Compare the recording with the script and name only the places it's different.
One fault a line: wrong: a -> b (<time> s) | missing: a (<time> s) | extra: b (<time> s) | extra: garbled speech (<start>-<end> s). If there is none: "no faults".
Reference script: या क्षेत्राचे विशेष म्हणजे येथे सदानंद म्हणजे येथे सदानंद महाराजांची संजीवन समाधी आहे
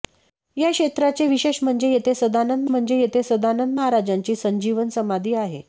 no faults